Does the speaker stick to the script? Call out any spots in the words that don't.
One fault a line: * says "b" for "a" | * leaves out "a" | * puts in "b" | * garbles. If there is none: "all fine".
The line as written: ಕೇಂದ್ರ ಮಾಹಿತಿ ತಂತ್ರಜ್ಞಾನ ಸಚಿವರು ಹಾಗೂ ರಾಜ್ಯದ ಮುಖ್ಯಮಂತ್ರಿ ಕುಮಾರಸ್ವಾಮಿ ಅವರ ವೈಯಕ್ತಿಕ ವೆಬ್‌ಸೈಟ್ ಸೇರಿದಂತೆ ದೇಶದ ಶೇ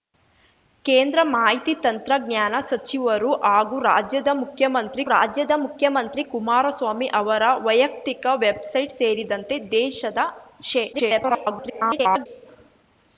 * puts in "ರಾಜ್ಯದ ಮುಖ್ಯಮಂತ್ರಿ"
* garbles